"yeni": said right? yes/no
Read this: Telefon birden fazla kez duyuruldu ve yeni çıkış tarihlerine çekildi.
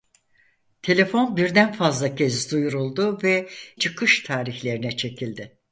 no